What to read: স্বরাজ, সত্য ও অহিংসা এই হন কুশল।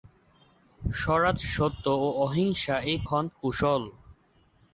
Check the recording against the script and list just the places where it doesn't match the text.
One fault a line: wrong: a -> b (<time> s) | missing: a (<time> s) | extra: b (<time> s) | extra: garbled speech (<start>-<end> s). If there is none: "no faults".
no faults